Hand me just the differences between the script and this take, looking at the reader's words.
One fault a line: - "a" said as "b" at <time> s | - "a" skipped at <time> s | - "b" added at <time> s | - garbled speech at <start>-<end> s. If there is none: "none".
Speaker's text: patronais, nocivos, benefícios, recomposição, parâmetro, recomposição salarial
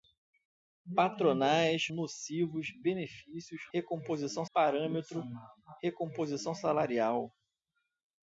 none